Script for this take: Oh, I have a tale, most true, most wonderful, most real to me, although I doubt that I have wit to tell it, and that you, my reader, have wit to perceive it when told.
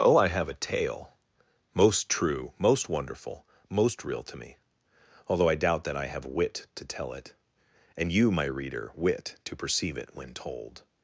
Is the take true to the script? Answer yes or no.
no